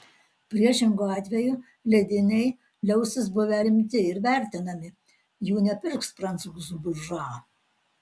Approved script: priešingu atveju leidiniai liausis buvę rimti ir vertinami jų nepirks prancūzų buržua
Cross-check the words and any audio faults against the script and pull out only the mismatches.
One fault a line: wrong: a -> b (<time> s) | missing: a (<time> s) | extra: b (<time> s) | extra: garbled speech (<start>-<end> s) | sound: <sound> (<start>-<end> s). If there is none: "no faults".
no faults